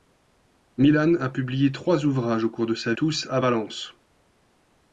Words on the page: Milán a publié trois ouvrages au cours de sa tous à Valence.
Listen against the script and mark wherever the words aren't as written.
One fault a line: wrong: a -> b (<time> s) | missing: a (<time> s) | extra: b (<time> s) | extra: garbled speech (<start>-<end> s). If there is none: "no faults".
no faults